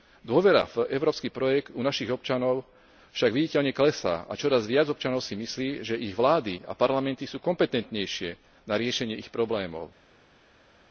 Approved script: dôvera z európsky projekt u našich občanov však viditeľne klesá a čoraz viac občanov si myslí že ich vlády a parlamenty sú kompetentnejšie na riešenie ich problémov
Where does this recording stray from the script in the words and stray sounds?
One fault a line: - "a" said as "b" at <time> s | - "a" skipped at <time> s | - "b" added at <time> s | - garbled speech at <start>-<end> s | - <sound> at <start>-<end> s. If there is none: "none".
- "z" said as "v" at 0.7 s